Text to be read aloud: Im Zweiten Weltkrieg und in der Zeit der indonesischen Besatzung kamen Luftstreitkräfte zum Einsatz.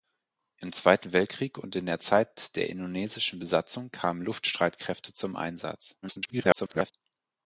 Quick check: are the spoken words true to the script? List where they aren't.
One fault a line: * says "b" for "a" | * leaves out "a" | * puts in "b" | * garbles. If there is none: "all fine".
* garbles